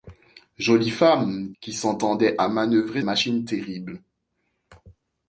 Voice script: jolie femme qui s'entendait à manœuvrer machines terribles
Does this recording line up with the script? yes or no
yes